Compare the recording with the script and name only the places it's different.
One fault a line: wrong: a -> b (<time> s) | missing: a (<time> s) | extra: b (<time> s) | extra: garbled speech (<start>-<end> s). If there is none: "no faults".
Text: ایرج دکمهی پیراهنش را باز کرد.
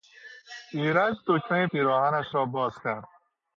no faults